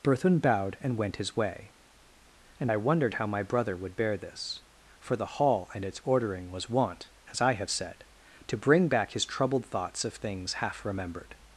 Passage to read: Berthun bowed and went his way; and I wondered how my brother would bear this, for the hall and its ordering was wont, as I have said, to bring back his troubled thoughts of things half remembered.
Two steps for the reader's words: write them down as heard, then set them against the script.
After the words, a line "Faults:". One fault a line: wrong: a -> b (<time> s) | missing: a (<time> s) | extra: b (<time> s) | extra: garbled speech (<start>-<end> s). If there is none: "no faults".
Berthun bowed and went his way; and I wondered how my brother would bear this, for the hall and its ordering was wont, as I have said, to bring back his troubled thoughts of things half remembered.
Faults:
no faults